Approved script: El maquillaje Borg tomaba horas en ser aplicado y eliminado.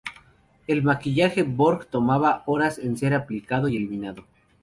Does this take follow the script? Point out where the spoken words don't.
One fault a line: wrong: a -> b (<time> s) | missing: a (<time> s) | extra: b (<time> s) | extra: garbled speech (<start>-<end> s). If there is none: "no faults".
no faults